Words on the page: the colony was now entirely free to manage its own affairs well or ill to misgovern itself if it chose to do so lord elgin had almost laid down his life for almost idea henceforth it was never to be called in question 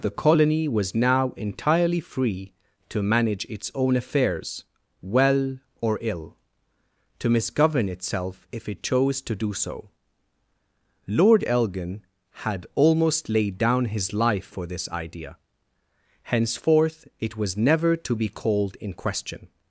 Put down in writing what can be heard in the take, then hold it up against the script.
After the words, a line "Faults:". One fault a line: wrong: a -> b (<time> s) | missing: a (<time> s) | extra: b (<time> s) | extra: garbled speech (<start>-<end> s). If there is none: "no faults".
the colony was now entirely free to manage its own affairs well or ill to misgovern itself if it chose to do so lord elgin had almost laid down his life for this idea henceforth it was never to be called in question
Faults:
wrong: almost -> this (14.7 s)